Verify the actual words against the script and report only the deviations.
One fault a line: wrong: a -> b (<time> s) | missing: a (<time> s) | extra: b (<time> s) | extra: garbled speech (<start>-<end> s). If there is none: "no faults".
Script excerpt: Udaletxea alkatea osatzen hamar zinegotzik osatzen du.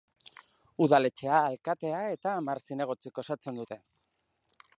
wrong: osatzen -> eta (2.1 s)
wrong: du -> dute (3.6 s)